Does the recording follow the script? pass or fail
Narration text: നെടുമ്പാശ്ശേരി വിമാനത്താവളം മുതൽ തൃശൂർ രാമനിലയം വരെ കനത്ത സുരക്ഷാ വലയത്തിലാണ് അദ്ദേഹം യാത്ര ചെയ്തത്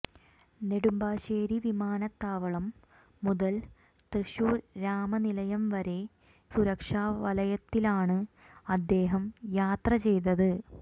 fail